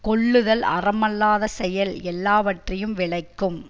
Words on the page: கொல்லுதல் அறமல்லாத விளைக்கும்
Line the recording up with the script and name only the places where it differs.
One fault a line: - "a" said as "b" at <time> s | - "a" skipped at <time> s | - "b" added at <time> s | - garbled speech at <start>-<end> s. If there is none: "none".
- "செயல் எல்லாவற்றையும்" added at 1.5 s